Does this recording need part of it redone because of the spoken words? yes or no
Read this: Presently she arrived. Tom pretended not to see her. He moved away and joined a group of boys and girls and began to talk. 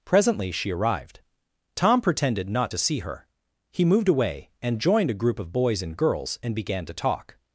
no